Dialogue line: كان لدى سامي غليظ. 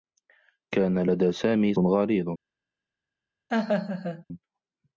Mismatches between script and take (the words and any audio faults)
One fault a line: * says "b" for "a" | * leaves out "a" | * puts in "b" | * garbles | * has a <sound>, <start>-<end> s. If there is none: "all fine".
* has a laugh, 3.5-4.2 s